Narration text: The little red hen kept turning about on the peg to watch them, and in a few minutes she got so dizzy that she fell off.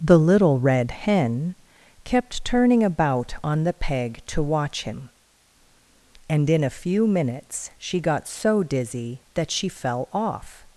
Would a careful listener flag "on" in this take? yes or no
no